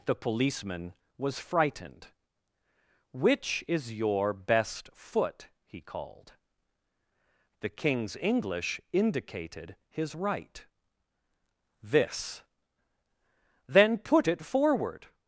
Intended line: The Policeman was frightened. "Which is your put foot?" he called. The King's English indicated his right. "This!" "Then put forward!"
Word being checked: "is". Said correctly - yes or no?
yes